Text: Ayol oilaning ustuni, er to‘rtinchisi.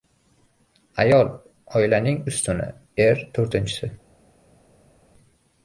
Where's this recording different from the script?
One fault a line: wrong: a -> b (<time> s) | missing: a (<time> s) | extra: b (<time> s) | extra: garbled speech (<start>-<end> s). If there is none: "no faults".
no faults